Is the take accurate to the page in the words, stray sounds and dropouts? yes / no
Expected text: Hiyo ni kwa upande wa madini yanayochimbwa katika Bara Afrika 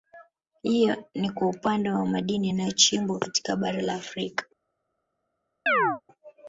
no